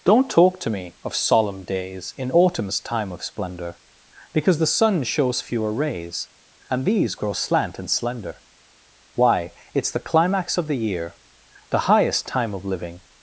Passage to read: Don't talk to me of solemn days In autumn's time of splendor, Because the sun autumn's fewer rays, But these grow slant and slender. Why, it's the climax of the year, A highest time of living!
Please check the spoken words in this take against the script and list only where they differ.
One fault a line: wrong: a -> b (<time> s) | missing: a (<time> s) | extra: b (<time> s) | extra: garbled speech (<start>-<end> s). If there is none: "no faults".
wrong: autumn's -> shows (5.0 s)
wrong: But -> And (6.7 s)
wrong: A -> The (11.7 s)